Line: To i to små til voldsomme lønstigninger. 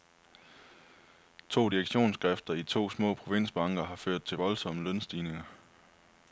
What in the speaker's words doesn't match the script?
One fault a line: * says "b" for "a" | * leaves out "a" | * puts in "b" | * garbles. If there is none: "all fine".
* puts in "direktionsskifter"
* puts in "provinsbanker har ført"